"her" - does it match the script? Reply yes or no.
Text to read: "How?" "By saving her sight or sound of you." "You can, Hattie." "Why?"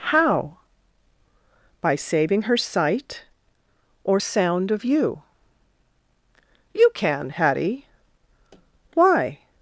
yes